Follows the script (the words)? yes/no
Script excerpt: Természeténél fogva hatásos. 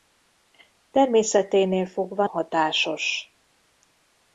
yes